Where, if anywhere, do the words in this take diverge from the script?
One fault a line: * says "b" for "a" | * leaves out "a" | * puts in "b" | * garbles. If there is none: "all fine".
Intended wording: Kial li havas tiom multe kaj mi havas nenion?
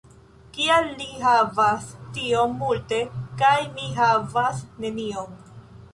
all fine